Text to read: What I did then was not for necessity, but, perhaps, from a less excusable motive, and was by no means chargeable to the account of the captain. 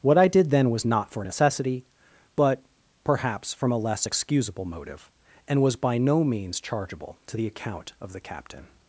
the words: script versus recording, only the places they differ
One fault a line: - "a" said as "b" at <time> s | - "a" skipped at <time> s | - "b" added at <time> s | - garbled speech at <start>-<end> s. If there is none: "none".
none